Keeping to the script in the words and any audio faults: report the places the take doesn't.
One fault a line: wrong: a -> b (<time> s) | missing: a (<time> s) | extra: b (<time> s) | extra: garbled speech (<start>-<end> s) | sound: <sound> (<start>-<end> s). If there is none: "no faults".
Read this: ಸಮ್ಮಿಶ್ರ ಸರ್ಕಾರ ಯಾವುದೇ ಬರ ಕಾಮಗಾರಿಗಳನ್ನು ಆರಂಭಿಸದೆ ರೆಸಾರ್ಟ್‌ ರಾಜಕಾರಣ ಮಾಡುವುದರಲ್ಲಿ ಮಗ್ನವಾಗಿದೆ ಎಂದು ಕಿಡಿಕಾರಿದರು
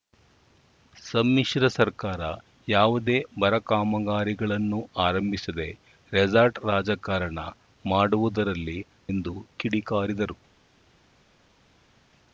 missing: ಮಗ್ನವಾಗಿದೆ (8.8 s)